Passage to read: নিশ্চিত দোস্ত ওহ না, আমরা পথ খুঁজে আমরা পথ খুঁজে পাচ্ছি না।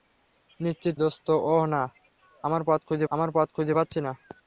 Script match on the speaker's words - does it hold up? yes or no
yes